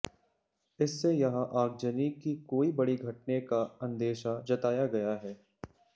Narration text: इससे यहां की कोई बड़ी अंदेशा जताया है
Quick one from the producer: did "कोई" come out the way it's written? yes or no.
yes